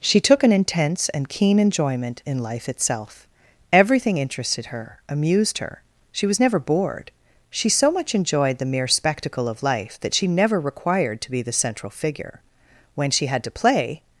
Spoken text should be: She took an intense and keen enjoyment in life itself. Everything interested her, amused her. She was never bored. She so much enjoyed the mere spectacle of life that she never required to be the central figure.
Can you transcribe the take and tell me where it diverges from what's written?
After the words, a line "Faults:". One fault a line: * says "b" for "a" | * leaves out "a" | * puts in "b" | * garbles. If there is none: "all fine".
She took an intense and keen enjoyment in life itself. Everything interested her, amused her. She was never bored. She so much enjoyed the mere spectacle of life that she never required to be the central figure. When she had to play
Faults:
* puts in "When she had to play"